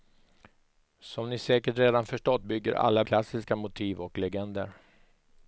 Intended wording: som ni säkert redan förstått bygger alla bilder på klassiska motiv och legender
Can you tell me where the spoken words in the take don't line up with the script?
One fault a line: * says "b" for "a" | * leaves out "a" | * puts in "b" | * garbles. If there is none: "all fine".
* leaves out "bilder på"